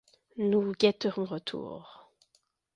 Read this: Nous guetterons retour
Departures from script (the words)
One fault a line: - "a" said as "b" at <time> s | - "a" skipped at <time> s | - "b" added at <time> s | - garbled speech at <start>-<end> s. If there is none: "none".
none